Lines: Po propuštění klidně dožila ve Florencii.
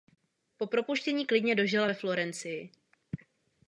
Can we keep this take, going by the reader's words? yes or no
yes